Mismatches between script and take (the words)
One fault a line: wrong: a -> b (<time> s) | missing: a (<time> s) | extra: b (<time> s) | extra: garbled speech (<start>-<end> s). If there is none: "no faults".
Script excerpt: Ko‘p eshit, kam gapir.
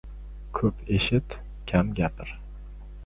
no faults